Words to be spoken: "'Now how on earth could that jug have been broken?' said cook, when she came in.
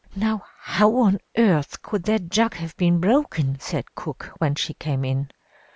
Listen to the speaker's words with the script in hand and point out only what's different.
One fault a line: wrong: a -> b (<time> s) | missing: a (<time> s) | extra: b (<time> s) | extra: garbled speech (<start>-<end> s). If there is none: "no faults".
no faults